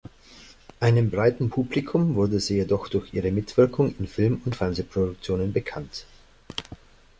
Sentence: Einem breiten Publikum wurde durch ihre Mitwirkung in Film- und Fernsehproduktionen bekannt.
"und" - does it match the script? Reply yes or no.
yes